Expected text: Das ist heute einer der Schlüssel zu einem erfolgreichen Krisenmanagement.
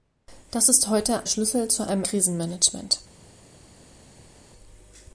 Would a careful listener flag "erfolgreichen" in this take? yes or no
yes